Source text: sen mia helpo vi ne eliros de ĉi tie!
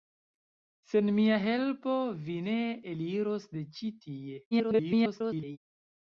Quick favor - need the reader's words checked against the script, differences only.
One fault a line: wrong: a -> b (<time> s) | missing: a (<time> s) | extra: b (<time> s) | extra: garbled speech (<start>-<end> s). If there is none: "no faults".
extra: garbled speech (4.5-5.6 s)